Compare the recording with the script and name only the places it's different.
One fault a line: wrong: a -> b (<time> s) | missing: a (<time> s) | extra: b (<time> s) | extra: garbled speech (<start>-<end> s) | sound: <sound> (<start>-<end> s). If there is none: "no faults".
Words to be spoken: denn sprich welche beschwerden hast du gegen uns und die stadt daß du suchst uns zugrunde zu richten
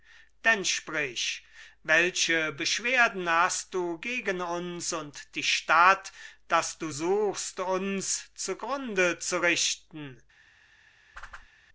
sound: whoosh (11.1-11.5 s)